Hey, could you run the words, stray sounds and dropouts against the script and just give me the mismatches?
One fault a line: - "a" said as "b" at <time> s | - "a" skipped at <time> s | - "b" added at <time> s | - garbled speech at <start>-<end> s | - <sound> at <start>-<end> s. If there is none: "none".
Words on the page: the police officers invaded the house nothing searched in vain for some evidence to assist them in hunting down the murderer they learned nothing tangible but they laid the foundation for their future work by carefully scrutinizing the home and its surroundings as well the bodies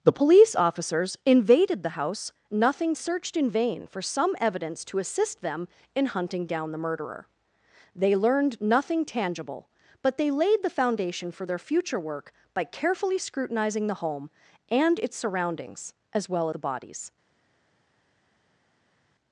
none